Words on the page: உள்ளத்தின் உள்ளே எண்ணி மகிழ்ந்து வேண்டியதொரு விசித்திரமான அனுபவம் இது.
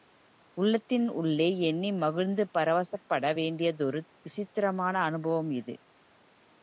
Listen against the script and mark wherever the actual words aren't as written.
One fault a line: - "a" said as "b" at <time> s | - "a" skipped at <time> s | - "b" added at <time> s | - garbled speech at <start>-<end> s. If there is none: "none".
- "பரவசப்பட" added at 2.5 s